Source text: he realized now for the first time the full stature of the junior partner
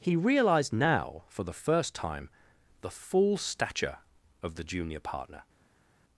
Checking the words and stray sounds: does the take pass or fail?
pass